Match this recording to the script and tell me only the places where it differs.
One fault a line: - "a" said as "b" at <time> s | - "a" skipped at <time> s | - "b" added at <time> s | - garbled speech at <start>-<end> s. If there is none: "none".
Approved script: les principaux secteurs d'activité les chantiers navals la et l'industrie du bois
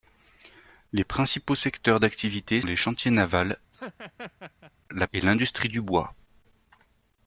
none